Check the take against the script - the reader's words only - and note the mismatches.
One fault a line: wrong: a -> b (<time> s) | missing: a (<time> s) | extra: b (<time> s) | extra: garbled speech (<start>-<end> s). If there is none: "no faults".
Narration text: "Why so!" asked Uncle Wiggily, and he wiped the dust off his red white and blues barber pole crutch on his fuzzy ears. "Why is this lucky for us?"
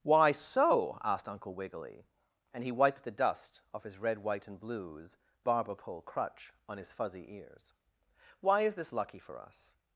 no faults